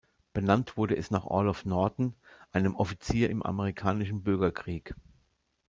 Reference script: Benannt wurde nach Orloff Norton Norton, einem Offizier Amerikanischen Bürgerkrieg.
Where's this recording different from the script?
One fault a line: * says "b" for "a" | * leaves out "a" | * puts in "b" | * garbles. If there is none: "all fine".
* puts in "es"
* leaves out "Norton"
* puts in "im"